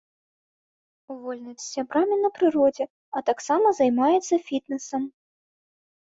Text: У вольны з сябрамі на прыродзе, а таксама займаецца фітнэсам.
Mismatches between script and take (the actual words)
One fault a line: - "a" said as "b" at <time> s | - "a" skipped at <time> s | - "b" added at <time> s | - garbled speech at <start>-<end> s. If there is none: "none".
none